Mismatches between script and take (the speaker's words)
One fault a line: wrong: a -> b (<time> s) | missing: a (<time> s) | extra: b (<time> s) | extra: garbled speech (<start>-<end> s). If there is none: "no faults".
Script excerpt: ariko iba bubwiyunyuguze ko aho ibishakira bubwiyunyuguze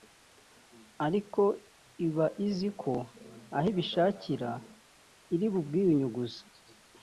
wrong: bubwiyunyuguze -> izi (2.5 s)
extra: iri (5.3 s)